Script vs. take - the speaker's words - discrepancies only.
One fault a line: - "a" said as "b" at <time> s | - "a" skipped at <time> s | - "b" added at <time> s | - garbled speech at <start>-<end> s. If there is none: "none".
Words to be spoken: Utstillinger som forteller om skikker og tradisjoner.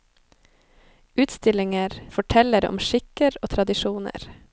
- "som" skipped at 2.1 s